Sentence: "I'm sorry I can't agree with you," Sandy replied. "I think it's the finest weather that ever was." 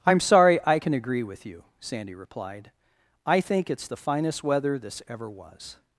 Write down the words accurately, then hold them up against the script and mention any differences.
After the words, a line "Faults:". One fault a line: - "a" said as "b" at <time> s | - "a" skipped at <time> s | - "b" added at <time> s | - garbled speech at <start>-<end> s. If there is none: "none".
"I'm sorry I can agree with you," Sandy replied. "I think it's the finest weather this ever was."
Faults:
- "can't" said as "can" at 0.8 s
- "that" said as "this" at 4.8 s